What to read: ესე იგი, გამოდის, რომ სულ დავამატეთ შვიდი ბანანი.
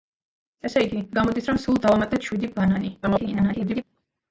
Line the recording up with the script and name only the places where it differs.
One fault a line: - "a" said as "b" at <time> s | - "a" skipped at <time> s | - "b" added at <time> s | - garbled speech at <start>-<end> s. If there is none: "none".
- garbled speech at 3.0-3.8 s